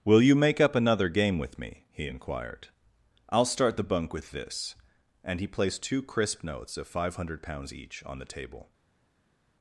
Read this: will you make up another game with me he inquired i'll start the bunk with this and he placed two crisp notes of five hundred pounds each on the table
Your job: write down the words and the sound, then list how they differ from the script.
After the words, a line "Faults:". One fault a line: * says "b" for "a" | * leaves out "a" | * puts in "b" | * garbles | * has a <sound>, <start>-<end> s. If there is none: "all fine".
will you make up another game with me he inquired i'll start the bunk with this and he placed two crisp notes of five hundred pounds each on the table
Faults:
all fine